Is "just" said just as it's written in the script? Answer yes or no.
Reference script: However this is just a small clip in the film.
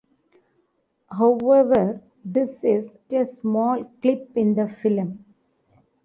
no